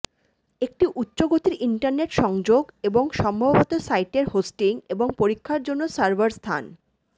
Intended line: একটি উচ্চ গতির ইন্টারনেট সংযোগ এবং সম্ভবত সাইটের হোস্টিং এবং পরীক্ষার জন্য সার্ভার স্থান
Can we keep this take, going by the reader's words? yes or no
yes